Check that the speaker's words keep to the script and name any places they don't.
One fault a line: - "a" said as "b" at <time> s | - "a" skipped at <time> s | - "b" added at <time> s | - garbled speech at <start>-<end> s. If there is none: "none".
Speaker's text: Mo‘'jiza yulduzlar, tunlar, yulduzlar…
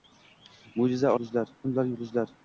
none